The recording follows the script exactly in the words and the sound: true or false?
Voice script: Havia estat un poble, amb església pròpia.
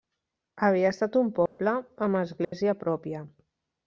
false